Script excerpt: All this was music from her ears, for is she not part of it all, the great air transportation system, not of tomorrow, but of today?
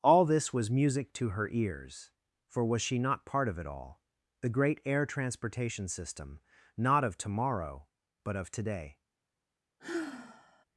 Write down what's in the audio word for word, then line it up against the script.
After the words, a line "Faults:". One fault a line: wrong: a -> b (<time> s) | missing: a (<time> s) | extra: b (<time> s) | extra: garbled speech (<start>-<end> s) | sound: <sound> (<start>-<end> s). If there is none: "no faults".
All this was music to her ears, for was she not part of it all, the great air transportation system, not of tomorrow, but of today?
Faults:
wrong: from -> to (1.1 s)
wrong: is -> was (2.6 s)
sound: sigh (9.8-10.6 s)